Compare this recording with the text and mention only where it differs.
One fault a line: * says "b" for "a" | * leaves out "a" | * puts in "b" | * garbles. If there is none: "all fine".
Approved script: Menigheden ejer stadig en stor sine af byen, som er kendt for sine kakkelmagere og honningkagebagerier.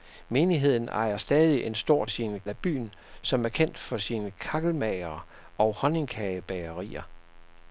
all fine